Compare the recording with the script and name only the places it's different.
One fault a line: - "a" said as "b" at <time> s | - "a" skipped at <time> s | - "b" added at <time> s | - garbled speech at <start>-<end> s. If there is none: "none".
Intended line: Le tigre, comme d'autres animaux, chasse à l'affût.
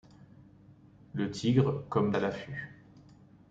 - "d'autres animaux chasse" skipped at 2.1 s